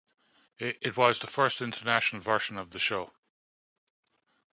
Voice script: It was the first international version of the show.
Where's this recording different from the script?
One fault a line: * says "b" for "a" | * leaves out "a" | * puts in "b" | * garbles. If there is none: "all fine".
all fine